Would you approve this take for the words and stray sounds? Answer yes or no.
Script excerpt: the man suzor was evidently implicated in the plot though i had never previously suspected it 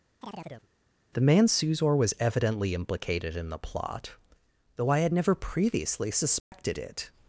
no